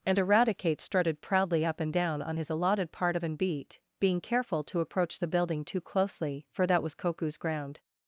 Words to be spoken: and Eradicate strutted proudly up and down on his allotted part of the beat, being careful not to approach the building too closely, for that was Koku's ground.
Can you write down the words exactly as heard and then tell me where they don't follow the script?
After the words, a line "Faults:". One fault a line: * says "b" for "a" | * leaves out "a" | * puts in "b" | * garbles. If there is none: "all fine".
and Eradicate strutted proudly up and down on his allotted part of an beat, being careful to approach the building too closely, for that was Koku's ground.
Faults:
* says "an" for "the"
* leaves out "not"